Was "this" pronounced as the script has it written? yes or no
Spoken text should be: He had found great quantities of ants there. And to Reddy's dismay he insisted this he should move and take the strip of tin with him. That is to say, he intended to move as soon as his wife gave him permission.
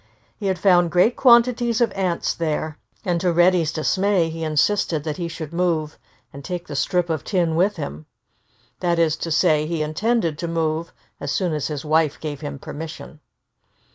no